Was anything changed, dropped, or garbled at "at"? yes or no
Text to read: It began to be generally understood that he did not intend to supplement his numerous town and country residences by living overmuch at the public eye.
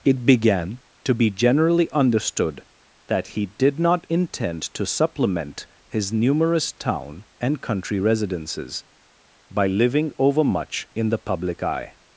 yes